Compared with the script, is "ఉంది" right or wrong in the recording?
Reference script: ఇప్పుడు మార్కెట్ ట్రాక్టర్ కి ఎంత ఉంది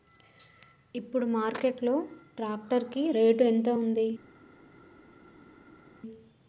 right